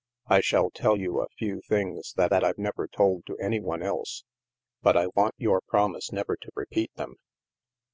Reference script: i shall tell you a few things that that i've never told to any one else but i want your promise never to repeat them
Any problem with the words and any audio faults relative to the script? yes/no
no